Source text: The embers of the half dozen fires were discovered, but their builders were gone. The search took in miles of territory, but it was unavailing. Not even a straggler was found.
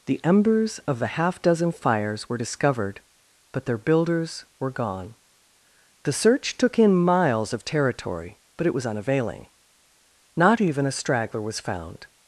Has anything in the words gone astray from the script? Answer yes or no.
no